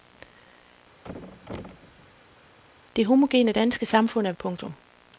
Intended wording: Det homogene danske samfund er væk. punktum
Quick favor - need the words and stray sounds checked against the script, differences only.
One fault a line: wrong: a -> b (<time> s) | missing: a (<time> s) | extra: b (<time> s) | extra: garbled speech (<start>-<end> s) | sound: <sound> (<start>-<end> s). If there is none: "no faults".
sound: thud (1.0-2.6 s)
missing: væk (4.3 s)